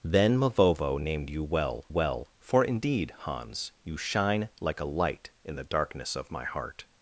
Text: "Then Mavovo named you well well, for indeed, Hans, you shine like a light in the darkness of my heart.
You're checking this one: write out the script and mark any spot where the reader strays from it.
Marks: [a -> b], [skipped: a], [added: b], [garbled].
"Then Mavovo named you well well, for indeed, Hans, you shine like a light in the darkness of my heart.